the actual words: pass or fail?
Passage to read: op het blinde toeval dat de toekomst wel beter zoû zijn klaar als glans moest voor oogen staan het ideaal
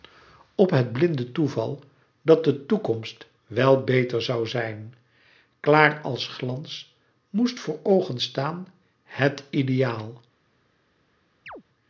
pass